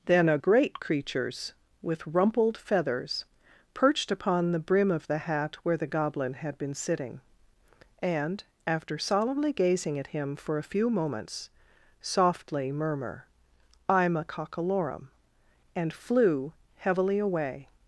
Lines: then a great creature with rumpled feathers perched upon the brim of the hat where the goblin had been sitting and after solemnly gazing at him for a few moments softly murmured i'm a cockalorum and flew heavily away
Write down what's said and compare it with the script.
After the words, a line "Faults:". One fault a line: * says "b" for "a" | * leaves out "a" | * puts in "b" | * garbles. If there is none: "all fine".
then a great creatures with rumpled feathers perched upon the brim of the hat where the goblin had been sitting and after solemnly gazing at him for a few moments softly murmur i'm a cockalorum and flew heavily away
Faults:
* says "creatures" for "creature"
* says "murmur" for "murmured"